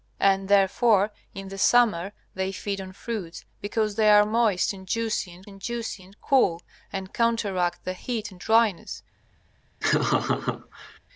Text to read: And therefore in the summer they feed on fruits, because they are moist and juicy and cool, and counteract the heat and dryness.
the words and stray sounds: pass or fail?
fail